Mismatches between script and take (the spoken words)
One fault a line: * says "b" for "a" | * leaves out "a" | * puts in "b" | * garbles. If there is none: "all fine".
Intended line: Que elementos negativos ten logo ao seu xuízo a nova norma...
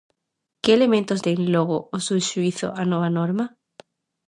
* leaves out "negativos"